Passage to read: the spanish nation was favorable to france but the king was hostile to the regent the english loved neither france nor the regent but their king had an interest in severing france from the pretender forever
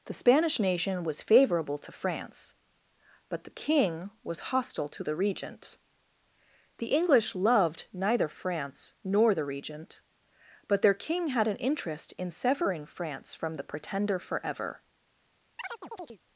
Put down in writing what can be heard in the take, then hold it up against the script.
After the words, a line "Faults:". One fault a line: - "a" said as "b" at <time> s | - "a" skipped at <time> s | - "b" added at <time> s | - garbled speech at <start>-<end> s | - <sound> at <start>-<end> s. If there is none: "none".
the spanish nation was favorable to france but the king was hostile to the regent the english loved neither france nor the regent but their king had an interest in severing france from the pretender forever
Faults:
- chirp at 15.6-16.2 s